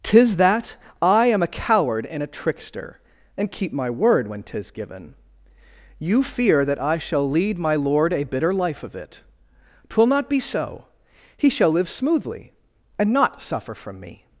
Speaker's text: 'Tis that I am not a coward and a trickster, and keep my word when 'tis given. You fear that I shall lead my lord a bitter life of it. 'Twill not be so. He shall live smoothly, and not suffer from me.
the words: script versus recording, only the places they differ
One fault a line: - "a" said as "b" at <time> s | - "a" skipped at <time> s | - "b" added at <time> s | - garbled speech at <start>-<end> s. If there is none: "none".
- "not" skipped at 1.4 s